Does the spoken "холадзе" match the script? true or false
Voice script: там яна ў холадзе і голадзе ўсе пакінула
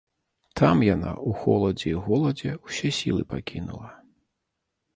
true